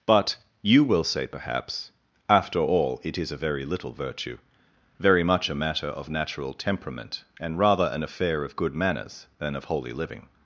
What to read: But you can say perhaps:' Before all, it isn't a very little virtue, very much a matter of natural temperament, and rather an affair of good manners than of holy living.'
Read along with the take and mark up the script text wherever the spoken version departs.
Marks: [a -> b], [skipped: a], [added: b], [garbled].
But you [can -> will] say perhaps:' [Before -> After] all, it [isn't -> is] a very little virtue, very much a matter of natural temperament, and rather an affair of good manners than of holy living.'